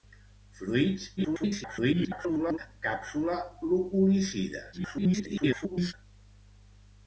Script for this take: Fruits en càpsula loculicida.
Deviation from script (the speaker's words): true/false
true